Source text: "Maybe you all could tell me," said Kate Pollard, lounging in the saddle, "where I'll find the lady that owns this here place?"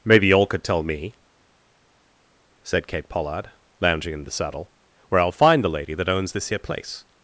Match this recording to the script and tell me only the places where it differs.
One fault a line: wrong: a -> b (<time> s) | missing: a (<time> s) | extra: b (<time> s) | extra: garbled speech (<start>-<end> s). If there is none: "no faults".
no faults